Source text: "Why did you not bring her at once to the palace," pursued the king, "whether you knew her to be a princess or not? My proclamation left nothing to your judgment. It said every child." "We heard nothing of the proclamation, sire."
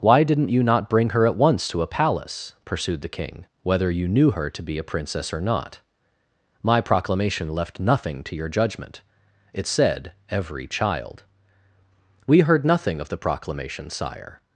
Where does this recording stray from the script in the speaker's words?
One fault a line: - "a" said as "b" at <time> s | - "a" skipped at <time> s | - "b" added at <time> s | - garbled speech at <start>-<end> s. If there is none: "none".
- "did" said as "didn't" at 0.2 s
- "the" said as "a" at 1.8 s